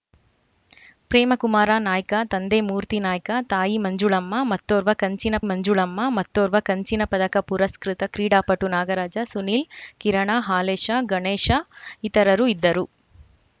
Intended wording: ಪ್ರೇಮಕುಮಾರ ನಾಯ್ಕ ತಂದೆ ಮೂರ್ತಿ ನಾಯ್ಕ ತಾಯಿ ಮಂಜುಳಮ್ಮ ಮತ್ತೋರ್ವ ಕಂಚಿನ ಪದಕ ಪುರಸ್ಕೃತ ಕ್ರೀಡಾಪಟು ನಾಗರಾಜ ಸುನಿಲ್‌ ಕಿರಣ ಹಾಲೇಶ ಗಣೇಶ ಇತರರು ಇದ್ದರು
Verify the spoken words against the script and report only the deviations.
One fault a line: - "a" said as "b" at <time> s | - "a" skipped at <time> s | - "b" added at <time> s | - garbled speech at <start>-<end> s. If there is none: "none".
- "ಮಂಜುಳಮ್ಮ ಮತ್ತೋರ್ವ ಕಂಚಿನ" added at 5.4 s